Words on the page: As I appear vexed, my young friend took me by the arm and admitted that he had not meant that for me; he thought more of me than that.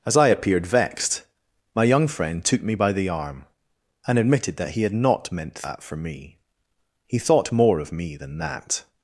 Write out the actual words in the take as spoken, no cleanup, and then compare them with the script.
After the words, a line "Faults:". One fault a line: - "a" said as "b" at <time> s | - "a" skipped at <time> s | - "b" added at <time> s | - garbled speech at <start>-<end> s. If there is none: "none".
As I appeared vexed, my young friend took me by the arm and admitted that he had not meant that for me; he thought more of me than that.
Faults:
- "appear" said as "appeared" at 0.3 s